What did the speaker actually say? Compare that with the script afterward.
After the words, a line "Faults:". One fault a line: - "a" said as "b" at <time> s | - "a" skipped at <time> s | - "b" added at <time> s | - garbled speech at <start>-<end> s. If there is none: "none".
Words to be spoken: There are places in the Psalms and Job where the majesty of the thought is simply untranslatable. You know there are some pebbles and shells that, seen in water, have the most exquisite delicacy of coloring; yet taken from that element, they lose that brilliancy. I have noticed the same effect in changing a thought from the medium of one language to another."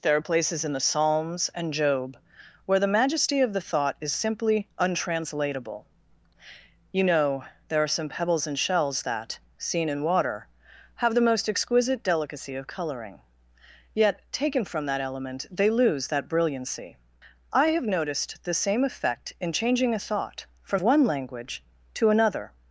There are places in the Psalms and Job where the majesty of the thought is simply untranslatable. You know there are some pebbles and shells that, seen in water, have the most exquisite delicacy of coloring; yet taken from that element, they lose that brilliancy. I have noticed the same effect in changing a thought from one language to another."
Faults:
- "the medium of" skipped at 20.8 s